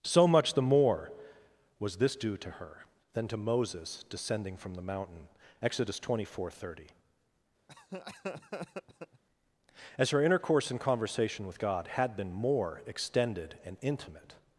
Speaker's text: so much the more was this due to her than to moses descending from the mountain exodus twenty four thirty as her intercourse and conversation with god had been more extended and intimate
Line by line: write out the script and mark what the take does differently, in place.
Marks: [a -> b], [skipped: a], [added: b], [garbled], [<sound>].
so much the more was this due to her than to moses descending from the mountain exodus twenty four thirty [laugh] as her intercourse and conversation with god had been more extended and intimate